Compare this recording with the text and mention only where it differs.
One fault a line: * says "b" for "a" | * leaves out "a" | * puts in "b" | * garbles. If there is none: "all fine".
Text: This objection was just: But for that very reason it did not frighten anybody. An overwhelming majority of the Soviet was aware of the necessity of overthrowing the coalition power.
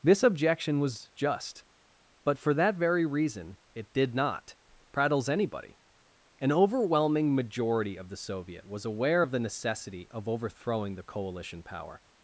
* says "prattles" for "frighten"